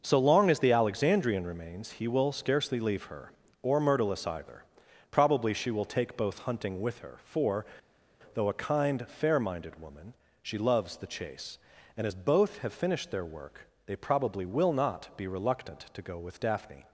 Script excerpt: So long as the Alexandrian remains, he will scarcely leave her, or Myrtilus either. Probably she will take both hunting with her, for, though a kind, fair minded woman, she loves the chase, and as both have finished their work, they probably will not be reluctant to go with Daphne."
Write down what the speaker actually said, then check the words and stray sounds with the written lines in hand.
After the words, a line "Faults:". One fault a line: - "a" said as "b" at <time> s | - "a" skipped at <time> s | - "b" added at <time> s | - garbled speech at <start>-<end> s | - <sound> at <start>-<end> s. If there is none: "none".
So long as the Alexandrian remains, he will scarcely leave her, or Myrtilus either. Probably she will take both hunting with her, for, though a kind, fair minded woman, she loves the chase, and as both have finished their work, they probably will not be reluctant to go with Daphne."
Faults:
none